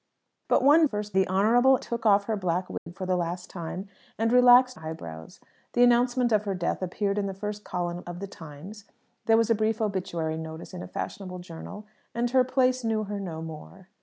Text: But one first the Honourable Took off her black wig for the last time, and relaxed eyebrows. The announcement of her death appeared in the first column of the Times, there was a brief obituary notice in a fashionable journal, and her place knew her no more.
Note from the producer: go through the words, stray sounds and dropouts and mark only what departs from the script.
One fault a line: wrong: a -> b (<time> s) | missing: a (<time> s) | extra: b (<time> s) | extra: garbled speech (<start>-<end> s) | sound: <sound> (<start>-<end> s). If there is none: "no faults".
sound: dropout (2.8-2.9 s)